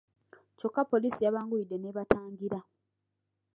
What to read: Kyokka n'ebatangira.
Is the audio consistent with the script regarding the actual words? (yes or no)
no